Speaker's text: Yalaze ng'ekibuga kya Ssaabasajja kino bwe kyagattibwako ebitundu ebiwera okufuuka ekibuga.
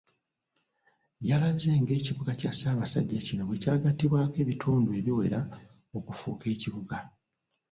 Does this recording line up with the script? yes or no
yes